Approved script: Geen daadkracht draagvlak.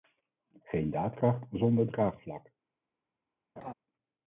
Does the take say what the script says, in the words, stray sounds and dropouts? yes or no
no